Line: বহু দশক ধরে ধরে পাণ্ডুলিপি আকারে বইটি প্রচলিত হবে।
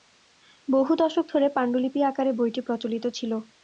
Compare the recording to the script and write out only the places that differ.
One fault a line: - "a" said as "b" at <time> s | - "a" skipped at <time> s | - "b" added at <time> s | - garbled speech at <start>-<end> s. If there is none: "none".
- "ধরে" skipped at 1.5 s
- "হবে" said as "ছিল" at 3.2 s